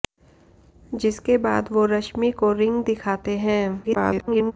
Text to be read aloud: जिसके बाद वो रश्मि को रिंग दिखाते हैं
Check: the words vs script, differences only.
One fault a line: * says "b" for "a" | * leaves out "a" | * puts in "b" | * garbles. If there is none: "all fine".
* garbles